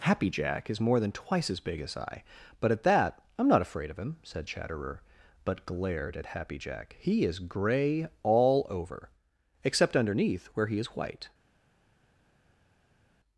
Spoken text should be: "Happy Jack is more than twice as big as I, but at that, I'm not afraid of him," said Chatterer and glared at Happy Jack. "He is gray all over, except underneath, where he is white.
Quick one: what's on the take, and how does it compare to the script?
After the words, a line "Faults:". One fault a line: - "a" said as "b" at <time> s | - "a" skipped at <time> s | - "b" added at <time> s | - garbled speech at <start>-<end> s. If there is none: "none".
"Happy Jack is more than twice as big as I, but at that, I'm not afraid of him," said Chatterer but glared at Happy Jack. "He is gray all over, except underneath, where he is white.
Faults:
- "and" said as "but" at 5.4 s